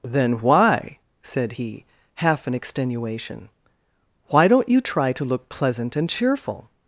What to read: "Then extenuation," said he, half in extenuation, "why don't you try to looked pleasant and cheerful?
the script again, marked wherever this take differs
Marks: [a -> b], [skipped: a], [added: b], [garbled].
"Then [extenuation," -> why] said he, half in extenuation, "why don't you try to [looked -> look] pleasant and cheerful?